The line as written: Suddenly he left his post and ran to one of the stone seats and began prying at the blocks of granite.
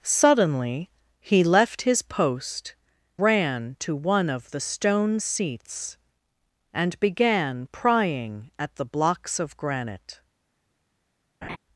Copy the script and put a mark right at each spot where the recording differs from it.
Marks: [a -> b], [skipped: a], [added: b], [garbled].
Suddenly he left his post [skipped: and] ran to one of the stone seats and began prying at the blocks of granite.